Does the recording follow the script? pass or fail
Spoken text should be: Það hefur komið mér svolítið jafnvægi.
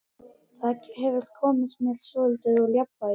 fail